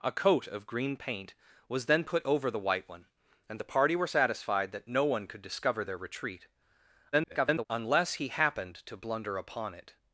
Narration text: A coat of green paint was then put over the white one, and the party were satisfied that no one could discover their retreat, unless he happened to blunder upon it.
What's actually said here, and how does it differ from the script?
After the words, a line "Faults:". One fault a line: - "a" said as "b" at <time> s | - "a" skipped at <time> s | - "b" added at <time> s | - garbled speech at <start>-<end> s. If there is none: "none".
A coat of green paint was then put over the white one, and the party were satisfied that no one could discover their retreat, [garbled] unless he happened to blunder upon it.
Faults:
- garbled speech at 7.1-7.7 s